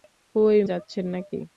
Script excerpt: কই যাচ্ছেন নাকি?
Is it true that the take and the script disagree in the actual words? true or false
false